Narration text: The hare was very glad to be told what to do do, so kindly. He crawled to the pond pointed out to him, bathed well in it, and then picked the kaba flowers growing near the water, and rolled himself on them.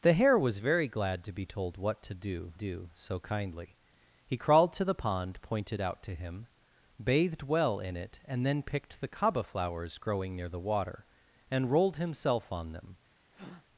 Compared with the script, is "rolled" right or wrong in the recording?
right